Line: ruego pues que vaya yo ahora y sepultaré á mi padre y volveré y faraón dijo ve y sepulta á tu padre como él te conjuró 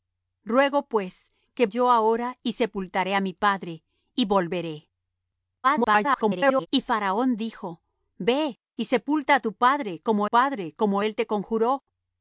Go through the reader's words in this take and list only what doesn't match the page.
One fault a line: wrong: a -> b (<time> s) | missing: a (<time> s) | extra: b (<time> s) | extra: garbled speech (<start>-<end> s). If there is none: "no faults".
missing: vaya (1.7 s)
extra: garbled speech (5.6-6.7 s)
extra: padre como (10.2 s)